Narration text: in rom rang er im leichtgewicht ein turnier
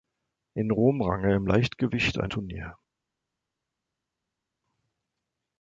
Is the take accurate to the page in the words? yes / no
yes